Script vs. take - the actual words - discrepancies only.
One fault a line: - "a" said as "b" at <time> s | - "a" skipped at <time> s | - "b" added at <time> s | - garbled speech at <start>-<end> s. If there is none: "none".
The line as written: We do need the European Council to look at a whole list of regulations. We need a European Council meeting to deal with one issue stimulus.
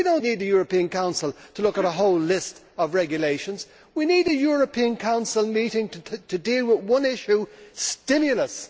none